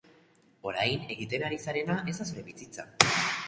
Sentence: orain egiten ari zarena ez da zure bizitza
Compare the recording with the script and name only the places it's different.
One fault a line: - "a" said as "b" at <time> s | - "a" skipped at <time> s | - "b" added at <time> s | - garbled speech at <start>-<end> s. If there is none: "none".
none